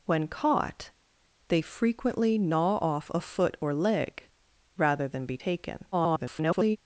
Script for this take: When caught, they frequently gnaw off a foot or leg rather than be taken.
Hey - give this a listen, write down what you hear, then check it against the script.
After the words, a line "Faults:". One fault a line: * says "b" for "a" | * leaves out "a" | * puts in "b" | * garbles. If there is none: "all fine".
When caught, they frequently gnaw off a foot or leg rather than be taken. [garbled]
Faults:
* garbles